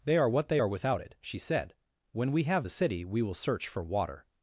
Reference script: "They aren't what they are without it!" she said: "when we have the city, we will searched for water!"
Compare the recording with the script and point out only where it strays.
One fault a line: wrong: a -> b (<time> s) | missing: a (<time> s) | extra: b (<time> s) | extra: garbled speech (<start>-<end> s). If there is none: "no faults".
wrong: aren't -> are (0.2 s)
wrong: searched -> search (3.4 s)